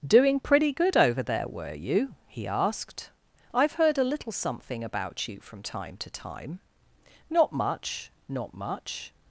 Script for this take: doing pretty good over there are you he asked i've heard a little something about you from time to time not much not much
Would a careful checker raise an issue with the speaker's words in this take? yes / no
yes